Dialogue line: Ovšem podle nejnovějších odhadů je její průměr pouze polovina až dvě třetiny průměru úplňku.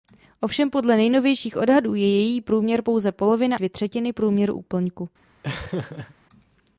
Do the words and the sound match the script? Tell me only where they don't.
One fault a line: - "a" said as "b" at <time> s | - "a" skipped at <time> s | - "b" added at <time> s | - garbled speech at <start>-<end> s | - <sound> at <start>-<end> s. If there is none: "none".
- "až" skipped at 3.6 s
- laugh at 5.4-6.1 s